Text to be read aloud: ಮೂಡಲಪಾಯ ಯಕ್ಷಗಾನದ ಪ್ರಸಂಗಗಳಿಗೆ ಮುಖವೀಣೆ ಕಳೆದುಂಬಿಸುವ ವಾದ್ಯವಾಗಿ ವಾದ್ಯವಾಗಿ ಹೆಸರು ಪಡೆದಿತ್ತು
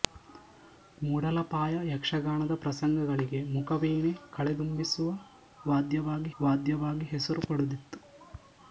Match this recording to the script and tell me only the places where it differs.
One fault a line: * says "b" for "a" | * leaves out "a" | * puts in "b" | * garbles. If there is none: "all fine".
all fine